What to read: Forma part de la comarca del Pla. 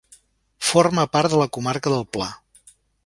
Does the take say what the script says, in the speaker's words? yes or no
yes